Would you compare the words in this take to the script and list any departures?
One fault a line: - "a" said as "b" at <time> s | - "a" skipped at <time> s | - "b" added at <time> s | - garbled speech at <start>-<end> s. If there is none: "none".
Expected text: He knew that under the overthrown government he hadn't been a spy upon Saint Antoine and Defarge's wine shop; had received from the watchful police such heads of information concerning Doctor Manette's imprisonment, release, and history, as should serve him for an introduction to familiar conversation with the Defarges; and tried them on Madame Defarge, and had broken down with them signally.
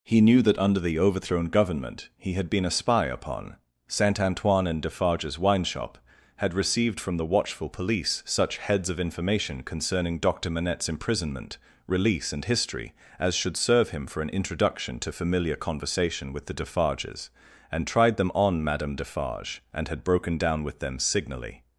- "hadn't" said as "had" at 2.3 s